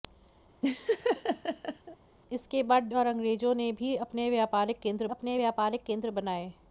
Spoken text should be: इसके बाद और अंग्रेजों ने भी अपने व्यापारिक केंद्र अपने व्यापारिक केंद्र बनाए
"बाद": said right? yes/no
yes